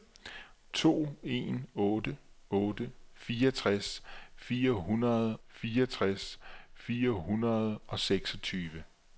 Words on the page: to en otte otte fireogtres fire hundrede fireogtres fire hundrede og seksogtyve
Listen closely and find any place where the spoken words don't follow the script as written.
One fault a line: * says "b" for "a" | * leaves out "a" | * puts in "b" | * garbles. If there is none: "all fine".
all fine